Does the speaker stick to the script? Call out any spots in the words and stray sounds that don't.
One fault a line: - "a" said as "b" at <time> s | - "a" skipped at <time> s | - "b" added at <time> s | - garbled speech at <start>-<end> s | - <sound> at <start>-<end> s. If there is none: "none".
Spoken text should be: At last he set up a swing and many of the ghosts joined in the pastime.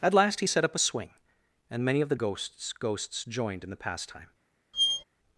- "ghosts" added at 2.7 s
- squeak at 4.7-5.0 s